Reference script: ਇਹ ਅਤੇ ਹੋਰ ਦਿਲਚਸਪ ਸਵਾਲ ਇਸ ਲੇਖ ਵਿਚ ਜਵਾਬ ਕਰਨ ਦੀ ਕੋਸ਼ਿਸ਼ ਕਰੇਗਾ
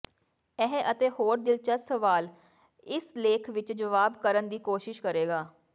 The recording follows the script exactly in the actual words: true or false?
true